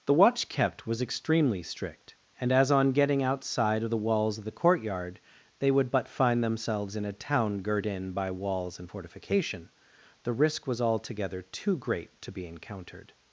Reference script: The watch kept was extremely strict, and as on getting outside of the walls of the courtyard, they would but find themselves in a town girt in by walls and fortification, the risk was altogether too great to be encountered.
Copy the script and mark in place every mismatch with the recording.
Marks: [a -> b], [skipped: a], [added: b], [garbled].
The watch kept was extremely strict, and as on getting outside of the walls of the courtyard, they would but find themselves in a town girt in by walls and fortification, the risk was altogether too great to be encountered.